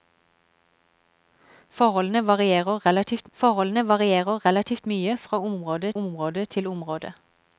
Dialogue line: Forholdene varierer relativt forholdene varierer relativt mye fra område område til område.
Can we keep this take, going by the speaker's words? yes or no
yes